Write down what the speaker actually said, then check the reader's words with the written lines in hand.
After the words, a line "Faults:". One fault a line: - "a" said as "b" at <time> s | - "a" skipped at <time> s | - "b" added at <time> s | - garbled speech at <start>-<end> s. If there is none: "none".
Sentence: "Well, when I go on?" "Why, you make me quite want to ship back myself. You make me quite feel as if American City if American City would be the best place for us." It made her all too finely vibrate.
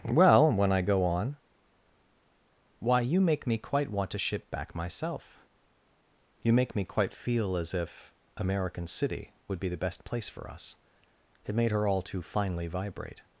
"Well, when I go on?" "Why, you make me quite want to ship back myself. You make me quite feel as if American City would be the best place for us." It made her all too finely vibrate.
Faults:
- "if American City" skipped at 9.3 s